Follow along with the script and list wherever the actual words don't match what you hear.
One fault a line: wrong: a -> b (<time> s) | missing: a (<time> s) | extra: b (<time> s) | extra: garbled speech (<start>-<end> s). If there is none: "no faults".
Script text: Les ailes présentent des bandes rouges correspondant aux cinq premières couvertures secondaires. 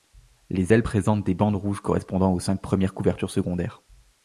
no faults